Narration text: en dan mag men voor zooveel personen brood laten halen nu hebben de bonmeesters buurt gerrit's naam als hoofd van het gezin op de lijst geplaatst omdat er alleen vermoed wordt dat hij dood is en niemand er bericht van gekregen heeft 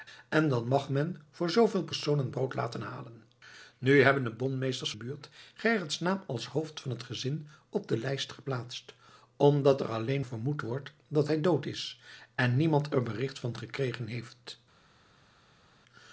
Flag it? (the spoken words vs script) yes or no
no